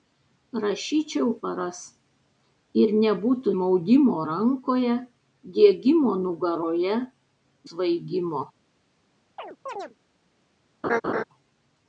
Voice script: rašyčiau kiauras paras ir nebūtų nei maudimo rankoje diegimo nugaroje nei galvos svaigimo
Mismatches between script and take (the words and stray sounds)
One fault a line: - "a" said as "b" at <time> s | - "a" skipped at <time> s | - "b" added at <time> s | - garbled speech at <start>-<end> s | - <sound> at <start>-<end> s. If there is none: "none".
- "kiauras" skipped at 1.3 s
- "nei" skipped at 3.5 s
- "nei galvos" skipped at 7.0 s
- chirp at 9.4-9.9 s
- laugh at 10.8-11.2 s